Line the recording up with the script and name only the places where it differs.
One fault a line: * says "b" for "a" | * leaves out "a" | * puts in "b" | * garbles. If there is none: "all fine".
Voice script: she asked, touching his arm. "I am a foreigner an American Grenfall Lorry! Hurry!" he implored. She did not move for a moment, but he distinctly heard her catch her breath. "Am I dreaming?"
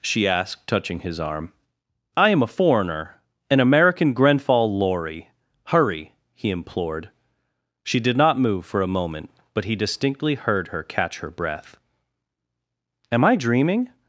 all fine